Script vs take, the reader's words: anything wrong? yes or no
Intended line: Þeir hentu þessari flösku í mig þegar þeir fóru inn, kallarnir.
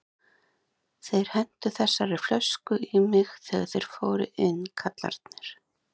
no